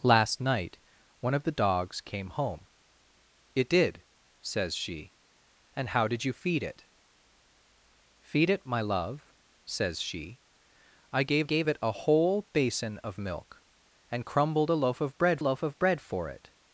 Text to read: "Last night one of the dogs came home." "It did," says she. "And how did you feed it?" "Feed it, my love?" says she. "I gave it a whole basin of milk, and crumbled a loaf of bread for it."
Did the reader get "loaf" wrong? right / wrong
right